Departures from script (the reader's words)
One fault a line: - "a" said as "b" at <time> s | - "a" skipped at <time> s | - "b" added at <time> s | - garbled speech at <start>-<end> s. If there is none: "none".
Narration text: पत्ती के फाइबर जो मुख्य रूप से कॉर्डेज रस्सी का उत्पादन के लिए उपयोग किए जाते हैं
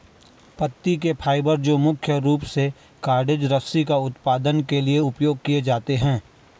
none